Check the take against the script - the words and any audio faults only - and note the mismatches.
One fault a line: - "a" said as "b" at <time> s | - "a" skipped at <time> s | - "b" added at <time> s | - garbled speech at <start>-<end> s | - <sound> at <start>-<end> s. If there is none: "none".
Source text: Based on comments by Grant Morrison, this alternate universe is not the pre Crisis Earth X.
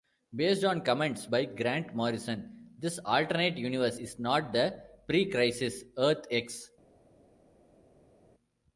none